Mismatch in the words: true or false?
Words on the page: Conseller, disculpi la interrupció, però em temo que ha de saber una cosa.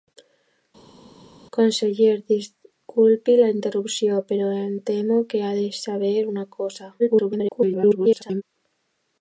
true